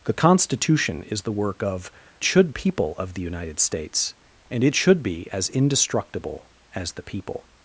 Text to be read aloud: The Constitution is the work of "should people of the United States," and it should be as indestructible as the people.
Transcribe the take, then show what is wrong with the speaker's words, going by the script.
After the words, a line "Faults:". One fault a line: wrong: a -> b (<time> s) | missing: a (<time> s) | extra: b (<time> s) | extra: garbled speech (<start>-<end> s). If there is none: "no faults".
The Constitution is the work of "should people of the United States," and it should be as indestructible as the people.
Faults:
no faults